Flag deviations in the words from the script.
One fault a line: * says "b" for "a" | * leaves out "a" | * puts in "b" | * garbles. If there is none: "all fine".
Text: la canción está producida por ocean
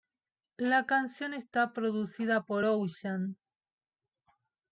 all fine